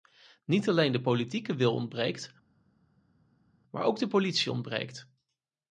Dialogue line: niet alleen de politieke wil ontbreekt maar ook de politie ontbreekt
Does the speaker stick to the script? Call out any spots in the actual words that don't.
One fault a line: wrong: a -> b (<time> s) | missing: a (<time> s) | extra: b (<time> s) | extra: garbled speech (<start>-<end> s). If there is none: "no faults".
no faults